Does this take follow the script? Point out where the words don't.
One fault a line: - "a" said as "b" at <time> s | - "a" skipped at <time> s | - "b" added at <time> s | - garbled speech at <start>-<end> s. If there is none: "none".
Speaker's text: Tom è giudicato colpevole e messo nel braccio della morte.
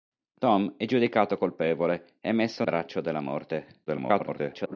- "nel" skipped at 2.6 s
- garbled speech at 3.9-4.8 s